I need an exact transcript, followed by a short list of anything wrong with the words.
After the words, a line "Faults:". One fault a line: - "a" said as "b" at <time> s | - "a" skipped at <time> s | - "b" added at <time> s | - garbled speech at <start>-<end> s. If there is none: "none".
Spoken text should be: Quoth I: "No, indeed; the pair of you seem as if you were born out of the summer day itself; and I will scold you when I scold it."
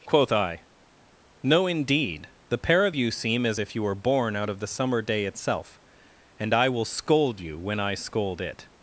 Quoth I: "No, indeed; the pair of you seem as if you were born out of the summer day itself; and I will scold you when I scold it."
Faults:
none